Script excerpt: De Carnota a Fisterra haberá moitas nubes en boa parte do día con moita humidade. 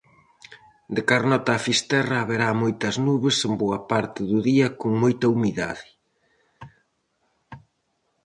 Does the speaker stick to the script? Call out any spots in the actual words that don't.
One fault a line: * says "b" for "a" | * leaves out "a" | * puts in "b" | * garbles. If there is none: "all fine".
all fine